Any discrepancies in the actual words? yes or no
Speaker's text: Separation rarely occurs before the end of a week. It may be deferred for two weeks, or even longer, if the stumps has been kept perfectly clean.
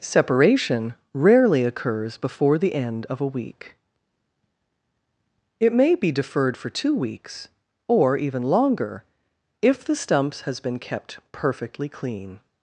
no